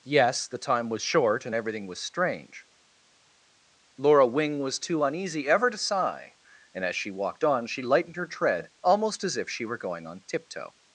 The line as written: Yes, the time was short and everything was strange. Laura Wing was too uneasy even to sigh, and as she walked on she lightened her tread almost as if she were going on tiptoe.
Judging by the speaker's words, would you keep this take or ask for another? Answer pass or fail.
fail